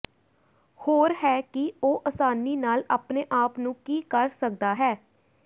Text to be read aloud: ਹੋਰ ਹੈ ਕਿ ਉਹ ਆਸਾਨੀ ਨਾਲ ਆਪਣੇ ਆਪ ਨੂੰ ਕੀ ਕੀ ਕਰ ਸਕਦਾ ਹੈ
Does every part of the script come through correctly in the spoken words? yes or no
no